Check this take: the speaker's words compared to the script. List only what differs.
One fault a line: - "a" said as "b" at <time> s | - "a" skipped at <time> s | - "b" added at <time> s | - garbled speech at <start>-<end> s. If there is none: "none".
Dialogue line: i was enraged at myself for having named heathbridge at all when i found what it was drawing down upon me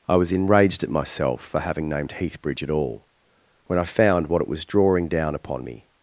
none